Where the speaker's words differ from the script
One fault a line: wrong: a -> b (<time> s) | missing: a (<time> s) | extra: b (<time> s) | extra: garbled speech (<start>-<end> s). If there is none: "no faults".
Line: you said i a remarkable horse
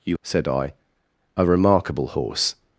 no faults